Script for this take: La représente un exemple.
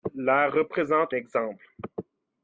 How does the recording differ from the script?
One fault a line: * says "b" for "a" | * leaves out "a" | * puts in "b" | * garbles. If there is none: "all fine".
* leaves out "un"